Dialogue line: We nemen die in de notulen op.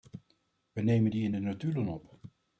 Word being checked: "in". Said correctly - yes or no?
yes